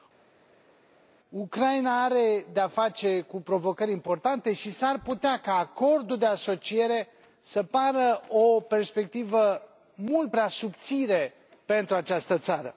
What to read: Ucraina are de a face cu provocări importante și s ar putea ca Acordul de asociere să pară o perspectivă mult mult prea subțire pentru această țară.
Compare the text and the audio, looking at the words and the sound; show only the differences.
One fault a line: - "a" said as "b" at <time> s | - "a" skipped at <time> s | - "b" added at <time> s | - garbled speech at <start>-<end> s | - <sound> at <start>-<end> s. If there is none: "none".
- "mult" skipped at 10.3 s